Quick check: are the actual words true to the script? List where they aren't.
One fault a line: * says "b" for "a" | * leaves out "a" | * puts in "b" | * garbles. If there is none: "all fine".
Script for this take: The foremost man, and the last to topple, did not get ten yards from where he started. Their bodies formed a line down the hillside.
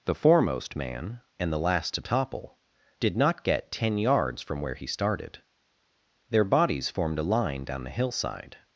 all fine